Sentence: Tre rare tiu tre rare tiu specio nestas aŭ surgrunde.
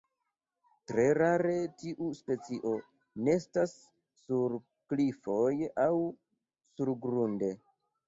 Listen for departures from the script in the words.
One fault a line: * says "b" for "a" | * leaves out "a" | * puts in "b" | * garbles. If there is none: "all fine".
* says "specio nestas sur klifoj" for "tre rare tiu specio nestas"